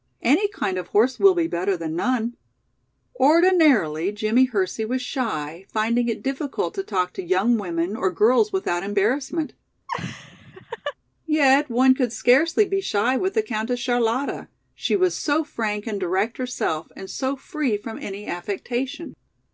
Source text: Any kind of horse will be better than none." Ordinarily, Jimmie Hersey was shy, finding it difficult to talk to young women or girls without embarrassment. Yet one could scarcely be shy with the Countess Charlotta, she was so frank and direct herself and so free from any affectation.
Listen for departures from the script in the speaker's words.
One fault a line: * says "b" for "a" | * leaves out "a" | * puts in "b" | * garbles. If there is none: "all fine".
all fine